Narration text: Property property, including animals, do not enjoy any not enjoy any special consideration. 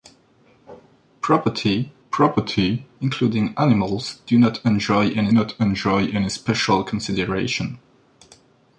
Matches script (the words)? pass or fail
pass